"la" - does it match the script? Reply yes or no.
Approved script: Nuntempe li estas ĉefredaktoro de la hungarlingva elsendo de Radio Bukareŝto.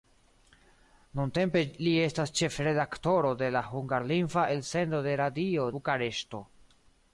yes